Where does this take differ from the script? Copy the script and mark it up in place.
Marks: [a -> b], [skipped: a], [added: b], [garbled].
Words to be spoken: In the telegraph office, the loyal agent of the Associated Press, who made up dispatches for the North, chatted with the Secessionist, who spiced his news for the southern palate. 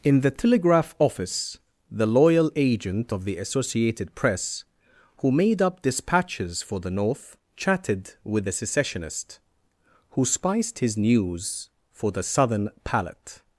In the telegraph office, the loyal agent of the Associated Press, who made up dispatches for the North, chatted with the Secessionist, who spiced his news for the southern palate.